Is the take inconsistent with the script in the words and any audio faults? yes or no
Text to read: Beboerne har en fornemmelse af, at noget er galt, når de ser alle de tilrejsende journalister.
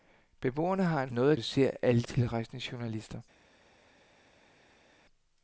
yes